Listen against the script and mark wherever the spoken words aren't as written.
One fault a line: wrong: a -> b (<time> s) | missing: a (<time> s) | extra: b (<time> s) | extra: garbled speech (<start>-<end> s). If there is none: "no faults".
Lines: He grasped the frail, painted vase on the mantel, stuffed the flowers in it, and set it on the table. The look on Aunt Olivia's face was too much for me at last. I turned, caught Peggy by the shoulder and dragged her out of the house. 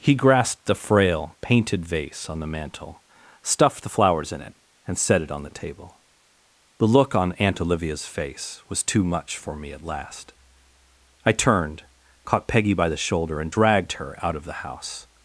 no faults